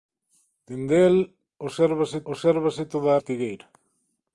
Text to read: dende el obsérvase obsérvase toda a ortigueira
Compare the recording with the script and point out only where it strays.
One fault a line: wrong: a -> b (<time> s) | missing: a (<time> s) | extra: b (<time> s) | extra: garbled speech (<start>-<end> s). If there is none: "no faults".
no faults